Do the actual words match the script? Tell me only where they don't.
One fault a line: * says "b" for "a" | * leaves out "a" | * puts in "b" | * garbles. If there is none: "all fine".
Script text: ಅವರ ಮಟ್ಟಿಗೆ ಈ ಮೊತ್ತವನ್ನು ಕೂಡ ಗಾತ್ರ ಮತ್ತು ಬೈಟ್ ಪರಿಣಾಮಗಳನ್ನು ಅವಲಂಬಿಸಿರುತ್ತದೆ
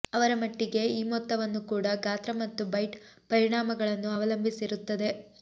all fine